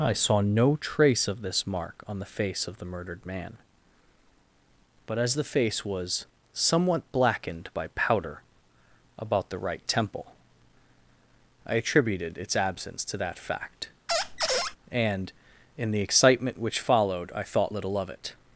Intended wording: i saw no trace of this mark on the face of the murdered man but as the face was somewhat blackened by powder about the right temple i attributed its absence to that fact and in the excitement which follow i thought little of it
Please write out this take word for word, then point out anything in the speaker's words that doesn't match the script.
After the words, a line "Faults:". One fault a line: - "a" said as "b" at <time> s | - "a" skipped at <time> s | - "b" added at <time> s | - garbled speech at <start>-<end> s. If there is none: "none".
i saw no trace of this mark on the face of the murdered man but as the face was somewhat blackened by powder about the right temple i attributed its absence to that fact and in the excitement which followed i thought little of it
Faults:
- "follow" said as "followed" at 16.8 s